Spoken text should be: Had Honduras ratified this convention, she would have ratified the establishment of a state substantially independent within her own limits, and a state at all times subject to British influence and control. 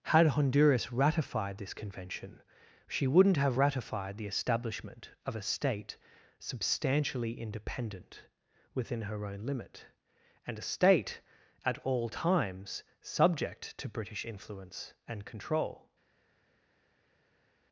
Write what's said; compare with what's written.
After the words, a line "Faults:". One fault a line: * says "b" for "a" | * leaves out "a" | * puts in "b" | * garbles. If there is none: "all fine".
Had Honduras ratified this convention, she wouldn't have ratified the establishment of a state substantially independent within her own limit, and a state at all times subject to British influence and control.
Faults:
* says "wouldn't" for "would"
* says "limit" for "limits"